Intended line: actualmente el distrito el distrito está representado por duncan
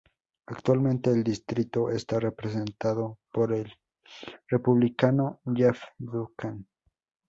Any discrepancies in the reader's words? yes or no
yes